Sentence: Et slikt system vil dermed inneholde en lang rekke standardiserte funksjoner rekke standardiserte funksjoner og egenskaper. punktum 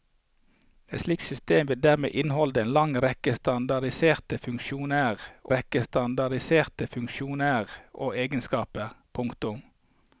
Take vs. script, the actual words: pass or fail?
pass